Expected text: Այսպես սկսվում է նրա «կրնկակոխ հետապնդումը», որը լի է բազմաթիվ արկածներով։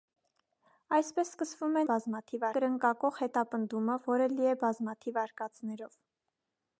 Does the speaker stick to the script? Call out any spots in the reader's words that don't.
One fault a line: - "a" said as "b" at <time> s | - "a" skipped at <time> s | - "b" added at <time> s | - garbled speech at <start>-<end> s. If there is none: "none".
- "նրա" said as "բազմաթիվ" at 1.9 s